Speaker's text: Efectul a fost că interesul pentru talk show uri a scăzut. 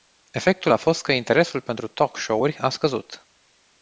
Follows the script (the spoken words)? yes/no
yes